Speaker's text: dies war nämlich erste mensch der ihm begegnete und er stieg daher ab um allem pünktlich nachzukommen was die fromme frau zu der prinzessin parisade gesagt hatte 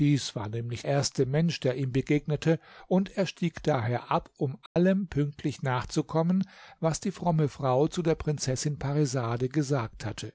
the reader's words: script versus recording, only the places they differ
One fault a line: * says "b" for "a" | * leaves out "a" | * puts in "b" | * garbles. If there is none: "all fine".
all fine